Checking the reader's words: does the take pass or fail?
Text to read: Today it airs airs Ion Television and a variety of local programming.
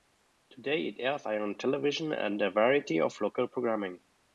fail